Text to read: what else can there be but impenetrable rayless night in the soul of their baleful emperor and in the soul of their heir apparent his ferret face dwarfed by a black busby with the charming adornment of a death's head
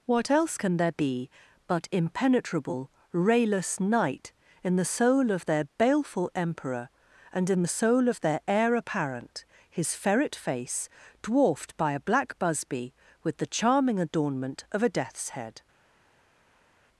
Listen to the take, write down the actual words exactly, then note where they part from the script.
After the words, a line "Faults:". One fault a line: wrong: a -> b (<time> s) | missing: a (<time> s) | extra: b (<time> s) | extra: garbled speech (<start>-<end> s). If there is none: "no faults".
what else can there be but impenetrable rayless night in the soul of their baleful emperor and in the soul of their heir apparent his ferret face dwarfed by a black busby with the charming adornment of a death's head
Faults:
no faults